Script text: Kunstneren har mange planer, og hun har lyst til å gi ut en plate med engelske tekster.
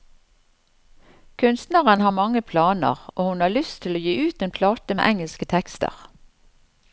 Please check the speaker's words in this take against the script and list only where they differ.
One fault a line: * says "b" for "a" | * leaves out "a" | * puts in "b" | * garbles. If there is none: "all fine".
all fine